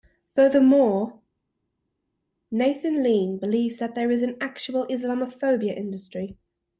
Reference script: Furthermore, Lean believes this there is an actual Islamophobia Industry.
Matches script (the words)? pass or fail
fail